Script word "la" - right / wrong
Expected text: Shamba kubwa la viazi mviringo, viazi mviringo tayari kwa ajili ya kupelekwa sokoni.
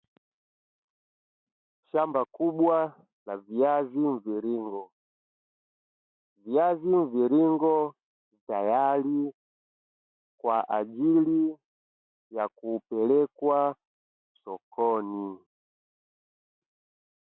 right